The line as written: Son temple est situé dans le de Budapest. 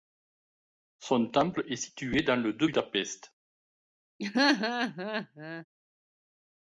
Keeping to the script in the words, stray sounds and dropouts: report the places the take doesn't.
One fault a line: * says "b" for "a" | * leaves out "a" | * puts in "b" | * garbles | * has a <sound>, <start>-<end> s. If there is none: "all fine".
* has a laugh, 4.2-5.7 s